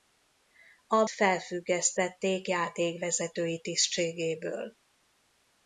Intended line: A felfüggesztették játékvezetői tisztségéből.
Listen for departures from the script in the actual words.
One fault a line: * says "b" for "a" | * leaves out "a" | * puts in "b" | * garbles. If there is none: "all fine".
all fine